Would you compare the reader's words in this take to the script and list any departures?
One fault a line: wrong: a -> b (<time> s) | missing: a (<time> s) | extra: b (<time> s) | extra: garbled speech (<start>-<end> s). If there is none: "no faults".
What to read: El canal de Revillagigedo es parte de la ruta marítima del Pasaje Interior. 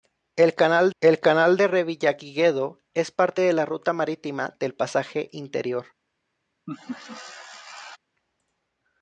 extra: el canal (1.0 s)